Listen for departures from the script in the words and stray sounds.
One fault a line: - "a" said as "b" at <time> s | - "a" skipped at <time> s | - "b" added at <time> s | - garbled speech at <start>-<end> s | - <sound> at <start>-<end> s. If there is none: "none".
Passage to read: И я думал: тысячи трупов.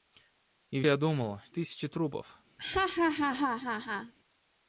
- laugh at 2.6-4.1 s